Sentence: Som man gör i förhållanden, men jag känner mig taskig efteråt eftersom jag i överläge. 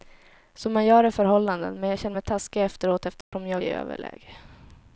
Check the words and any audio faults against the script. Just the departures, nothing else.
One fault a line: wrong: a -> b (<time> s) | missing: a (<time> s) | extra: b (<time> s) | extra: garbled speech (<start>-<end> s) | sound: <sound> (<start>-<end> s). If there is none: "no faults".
sound: dropout (3.2-3.3 s)